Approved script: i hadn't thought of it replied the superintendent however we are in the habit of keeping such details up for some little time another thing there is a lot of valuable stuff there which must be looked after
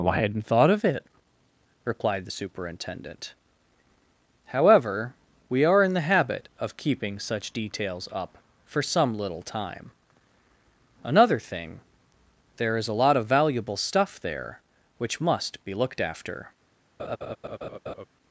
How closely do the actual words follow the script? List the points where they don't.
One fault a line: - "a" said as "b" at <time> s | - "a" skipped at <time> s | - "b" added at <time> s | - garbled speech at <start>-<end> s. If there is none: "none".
none